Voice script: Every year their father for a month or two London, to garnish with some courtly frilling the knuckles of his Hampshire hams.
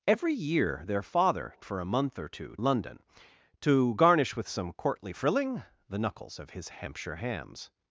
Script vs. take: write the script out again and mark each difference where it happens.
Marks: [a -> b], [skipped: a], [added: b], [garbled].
Every year their father for a month or two London, to garnish with some courtly frilling the knuckles of his Hampshire hams.